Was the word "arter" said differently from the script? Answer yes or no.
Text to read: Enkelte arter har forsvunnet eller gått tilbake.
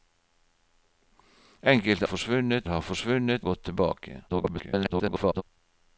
yes